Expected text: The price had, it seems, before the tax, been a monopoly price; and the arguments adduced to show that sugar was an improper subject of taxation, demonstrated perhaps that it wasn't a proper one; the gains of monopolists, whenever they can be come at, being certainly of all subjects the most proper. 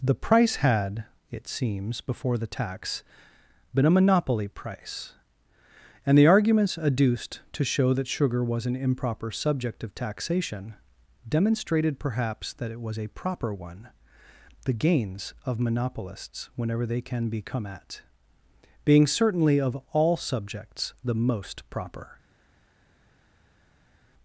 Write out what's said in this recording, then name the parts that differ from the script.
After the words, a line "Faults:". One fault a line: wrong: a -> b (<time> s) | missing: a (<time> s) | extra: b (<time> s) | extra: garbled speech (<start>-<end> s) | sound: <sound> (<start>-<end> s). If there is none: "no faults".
The price had, it seems, before the tax, been a monopoly price; and the arguments adduced to show that sugar was an improper subject of taxation, demonstrated perhaps that it was a proper one; the gains of monopolists, whenever they can be come at, being certainly of all subjects the most proper.
Faults:
wrong: wasn't -> was (12.8 s)